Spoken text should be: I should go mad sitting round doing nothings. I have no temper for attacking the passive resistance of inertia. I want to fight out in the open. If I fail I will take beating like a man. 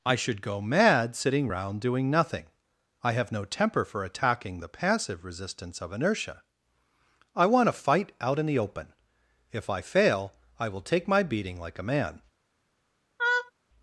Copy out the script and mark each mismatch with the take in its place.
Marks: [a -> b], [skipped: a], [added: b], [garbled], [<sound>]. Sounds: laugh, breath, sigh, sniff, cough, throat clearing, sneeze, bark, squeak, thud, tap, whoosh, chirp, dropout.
I should go mad sitting round doing [nothings. -> nothing] I have no temper for attacking the passive resistance of inertia. I want to fight out in the open. If I fail I will take [added: my] beating like a man. [laugh]